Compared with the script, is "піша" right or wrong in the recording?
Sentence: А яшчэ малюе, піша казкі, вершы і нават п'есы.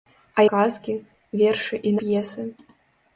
wrong